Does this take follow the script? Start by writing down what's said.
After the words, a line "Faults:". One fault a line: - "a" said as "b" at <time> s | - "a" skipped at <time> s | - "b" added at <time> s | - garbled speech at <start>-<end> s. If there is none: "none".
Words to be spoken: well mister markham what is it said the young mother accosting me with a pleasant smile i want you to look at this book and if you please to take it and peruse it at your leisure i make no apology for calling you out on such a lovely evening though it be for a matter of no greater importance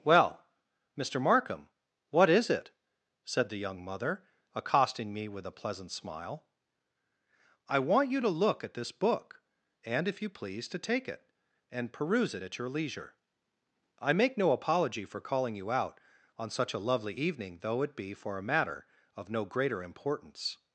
well mister markham what is it said the young mother accosting me with a pleasant smile i want you to look at this book and if you please to take it and peruse it at your leisure i make no apology for calling you out on such a lovely evening though it be for a matter of no greater importance
Faults:
none